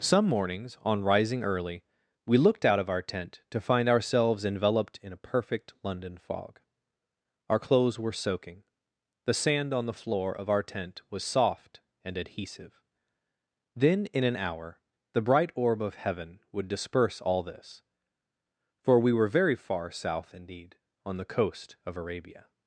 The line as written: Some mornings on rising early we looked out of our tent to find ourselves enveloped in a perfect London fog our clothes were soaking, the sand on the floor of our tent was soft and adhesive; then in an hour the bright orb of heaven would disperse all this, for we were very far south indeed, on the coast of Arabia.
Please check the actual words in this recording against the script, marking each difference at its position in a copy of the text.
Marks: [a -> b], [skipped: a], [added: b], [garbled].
Some mornings on rising early we looked out of our tent to find ourselves enveloped in a perfect London fog our clothes were soaking, the sand on the floor of our tent was soft and adhesive; then in an hour the bright orb of heaven would disperse all this, for we were very far south indeed, on the coast of Arabia.